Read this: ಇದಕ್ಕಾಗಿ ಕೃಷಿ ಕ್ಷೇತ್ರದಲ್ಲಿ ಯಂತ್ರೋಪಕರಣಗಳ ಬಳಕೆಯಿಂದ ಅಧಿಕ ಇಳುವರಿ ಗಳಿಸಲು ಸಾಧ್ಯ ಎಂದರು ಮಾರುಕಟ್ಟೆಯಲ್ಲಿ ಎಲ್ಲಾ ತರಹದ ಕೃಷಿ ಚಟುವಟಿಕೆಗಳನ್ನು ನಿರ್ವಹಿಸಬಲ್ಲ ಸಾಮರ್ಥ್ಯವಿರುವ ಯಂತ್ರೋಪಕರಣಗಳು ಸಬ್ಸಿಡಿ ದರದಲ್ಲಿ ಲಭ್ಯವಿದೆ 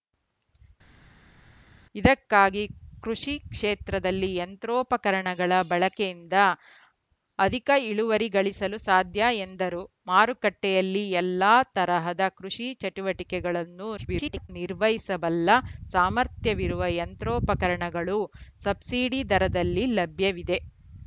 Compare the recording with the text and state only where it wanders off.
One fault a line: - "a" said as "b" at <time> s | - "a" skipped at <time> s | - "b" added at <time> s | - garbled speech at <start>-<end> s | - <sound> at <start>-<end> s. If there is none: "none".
- garbled speech at 14.0-14.5 s